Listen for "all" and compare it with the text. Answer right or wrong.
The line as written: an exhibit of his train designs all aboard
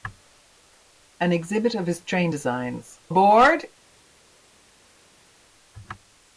wrong